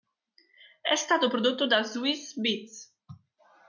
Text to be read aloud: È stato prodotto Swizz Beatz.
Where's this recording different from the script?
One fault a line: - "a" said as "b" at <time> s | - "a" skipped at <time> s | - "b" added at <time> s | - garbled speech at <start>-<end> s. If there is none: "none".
- "da" added at 1.7 s